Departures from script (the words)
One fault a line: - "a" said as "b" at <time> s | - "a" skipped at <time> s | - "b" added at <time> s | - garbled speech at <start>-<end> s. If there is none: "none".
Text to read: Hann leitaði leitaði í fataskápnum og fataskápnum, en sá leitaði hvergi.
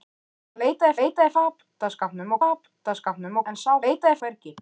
none